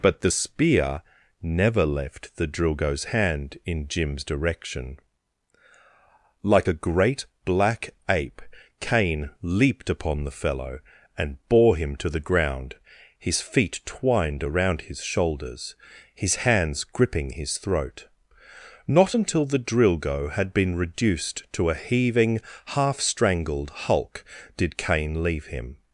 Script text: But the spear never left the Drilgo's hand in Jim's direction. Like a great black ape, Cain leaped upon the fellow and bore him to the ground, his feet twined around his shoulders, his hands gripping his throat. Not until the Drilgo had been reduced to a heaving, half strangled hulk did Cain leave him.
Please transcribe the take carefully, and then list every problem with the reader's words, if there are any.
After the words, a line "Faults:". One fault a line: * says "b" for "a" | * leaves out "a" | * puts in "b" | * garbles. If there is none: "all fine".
But the spear never left the Drilgo's hand in Jim's direction. Like a great black ape, Cain leaped upon the fellow and bore him to the ground, his feet twined around his shoulders, his hands gripping his throat. Not until the Drilgo had been reduced to a heaving, half strangled hulk did Cain leave him.
Faults:
all fine